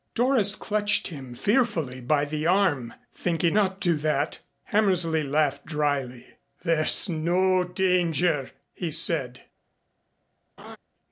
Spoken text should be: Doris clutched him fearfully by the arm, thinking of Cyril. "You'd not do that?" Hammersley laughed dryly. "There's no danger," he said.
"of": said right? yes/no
no